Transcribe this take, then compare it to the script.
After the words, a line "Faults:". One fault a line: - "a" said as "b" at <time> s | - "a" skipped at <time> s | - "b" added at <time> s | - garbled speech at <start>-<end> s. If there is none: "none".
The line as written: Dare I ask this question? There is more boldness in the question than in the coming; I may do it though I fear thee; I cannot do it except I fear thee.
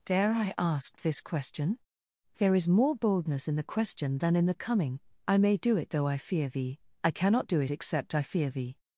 Dare I ask this question? There is more boldness in the question than in the coming; I may do it though I fear thee; I cannot do it except I fear thee.
Faults:
none